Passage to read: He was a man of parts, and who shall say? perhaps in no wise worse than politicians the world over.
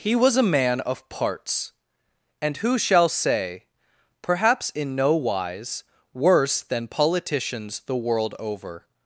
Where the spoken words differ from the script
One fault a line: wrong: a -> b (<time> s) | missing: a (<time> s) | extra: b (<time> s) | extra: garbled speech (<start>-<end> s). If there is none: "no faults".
no faults